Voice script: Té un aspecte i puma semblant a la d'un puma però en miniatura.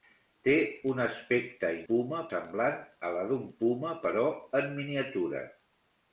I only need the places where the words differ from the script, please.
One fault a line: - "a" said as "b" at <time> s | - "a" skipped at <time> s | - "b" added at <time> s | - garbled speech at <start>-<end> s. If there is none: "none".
none